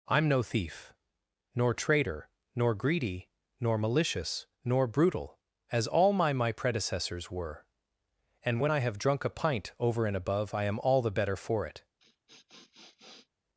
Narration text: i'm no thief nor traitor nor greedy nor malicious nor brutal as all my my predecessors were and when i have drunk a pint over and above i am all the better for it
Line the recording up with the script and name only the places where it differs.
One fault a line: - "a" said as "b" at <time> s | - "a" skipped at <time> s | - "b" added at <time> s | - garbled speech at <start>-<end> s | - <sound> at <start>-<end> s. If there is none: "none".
- sniff at 12.0-13.3 s